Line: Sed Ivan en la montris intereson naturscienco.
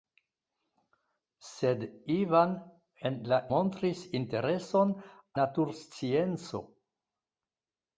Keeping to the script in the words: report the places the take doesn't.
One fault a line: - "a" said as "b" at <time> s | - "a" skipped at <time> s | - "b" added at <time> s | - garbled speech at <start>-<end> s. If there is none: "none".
none